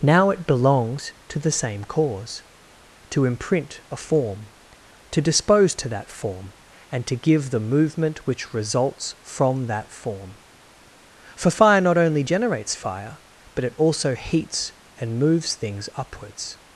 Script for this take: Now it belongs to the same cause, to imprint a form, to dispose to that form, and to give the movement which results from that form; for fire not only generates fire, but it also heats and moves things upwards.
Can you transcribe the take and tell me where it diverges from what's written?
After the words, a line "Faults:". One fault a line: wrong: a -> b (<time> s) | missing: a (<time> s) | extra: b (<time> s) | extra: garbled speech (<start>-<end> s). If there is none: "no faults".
Now it belongs to the same cause, to imprint a form, to dispose to that form, and to give the movement which results from that form; for fire not only generates fire, but it also heats and moves things upwards.
Faults:
no faults